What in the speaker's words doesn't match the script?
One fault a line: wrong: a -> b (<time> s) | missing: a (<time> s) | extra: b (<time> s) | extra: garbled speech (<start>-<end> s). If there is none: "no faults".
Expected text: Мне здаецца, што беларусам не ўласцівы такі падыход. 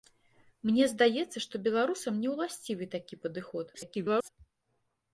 extra: garbled speech (3.7-4.3 s)